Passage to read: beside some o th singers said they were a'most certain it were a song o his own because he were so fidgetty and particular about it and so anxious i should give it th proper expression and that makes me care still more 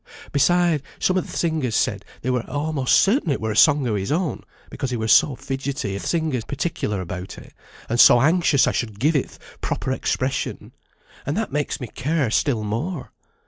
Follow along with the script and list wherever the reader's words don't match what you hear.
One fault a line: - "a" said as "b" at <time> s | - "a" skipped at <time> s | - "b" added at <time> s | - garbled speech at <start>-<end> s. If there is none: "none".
- "and" said as "singers" at 6.0 s